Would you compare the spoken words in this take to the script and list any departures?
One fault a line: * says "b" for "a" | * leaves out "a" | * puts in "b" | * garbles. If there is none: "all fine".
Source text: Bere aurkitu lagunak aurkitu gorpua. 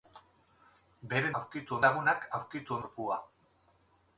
all fine